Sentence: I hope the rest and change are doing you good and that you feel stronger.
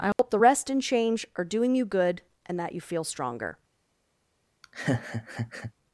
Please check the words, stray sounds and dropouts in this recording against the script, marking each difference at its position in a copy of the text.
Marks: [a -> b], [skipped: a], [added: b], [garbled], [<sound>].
I hope [dropout] the rest and change are doing you good and that you feel stronger. [laugh]